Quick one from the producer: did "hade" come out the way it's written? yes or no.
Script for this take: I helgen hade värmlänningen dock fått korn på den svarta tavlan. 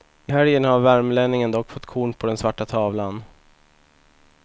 no